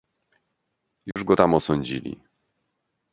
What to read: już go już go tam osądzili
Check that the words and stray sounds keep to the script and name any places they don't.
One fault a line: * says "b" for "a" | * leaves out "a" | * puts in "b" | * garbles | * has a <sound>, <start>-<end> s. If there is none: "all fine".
* has a dropout, 1.1-1.2 s
* leaves out "już go"